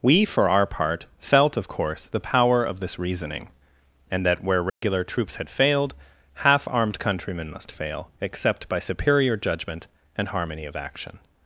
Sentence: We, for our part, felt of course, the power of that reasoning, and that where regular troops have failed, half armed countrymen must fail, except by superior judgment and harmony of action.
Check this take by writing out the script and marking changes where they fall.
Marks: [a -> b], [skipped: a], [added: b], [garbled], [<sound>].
We, for our part, felt of course, the power of [that -> this] reasoning, and that where regular [dropout] troops [have -> had] failed, half armed countrymen must fail, except by superior judgment and harmony of action.